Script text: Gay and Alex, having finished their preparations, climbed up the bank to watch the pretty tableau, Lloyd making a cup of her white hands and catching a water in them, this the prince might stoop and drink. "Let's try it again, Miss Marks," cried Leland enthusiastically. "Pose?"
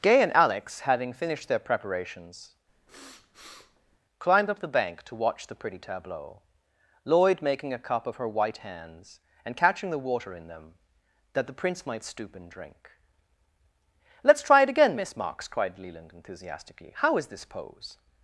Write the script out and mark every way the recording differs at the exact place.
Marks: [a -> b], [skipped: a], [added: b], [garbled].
Gay and Alex, having finished their preparations, climbed up the bank to watch the pretty tableau, Lloyd making a cup of her white hands and catching [a -> the] water in them, [this -> that] the prince might stoop and drink. "Let's try it again, Miss Marks," cried Leland enthusiastically. [added: How is this] "Pose?"